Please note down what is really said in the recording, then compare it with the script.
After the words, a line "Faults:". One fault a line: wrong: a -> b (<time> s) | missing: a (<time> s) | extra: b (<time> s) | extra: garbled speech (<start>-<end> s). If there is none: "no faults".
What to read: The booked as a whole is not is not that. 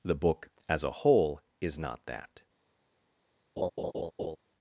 The book as a whole is not that.
Faults:
wrong: booked -> book (0.1 s)
missing: is not (2.0 s)